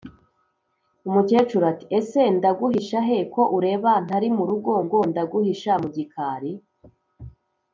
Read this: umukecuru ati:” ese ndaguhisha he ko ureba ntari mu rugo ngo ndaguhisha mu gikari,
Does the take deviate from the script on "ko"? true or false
false